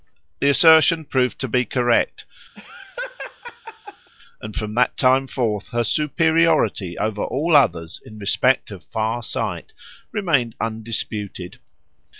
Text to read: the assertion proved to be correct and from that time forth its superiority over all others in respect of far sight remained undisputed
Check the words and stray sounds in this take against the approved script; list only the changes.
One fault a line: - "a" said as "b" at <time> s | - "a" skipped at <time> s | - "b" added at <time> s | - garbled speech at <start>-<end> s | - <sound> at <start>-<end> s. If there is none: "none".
- laugh at 2.6-4.1 s
- "its" said as "her" at 5.7 s